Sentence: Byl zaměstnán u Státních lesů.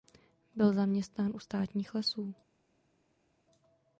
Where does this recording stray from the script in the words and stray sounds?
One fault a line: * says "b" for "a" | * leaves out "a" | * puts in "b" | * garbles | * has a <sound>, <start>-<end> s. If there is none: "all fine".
all fine